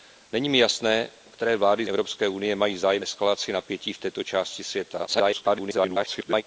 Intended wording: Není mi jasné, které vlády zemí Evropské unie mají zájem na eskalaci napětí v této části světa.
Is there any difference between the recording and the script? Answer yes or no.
yes